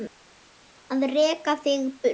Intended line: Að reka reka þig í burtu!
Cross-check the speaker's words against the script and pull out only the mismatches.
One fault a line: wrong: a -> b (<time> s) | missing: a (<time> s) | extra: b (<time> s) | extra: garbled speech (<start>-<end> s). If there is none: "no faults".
missing: reka (1.6 s)